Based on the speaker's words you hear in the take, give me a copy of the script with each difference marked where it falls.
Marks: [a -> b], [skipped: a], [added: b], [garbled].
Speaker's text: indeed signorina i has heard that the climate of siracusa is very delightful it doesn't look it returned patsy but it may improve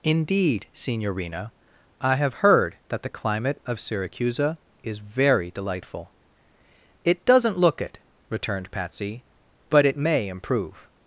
indeed signorina i [has -> have] heard that the climate of siracusa is very delightful it doesn't look it returned patsy but it may improve